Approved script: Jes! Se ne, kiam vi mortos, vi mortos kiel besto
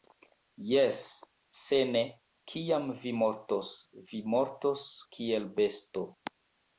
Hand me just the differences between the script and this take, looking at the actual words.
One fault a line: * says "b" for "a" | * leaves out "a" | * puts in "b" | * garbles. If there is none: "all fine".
all fine